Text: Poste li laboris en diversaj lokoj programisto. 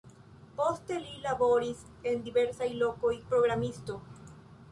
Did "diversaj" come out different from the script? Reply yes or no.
no